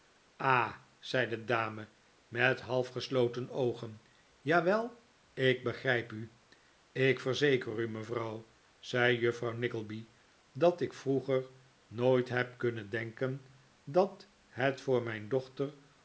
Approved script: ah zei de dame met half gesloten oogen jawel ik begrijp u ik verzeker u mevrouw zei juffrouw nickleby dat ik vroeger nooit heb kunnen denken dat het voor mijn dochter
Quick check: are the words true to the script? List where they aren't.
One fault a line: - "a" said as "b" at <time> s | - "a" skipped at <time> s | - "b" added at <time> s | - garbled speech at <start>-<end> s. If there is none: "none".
none